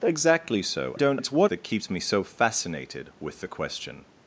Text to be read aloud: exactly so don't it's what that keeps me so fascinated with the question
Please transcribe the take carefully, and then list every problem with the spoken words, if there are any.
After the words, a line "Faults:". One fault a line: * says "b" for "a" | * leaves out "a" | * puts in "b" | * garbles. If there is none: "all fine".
exactly so don't it's what that keeps me so fascinated with the question
Faults:
all fine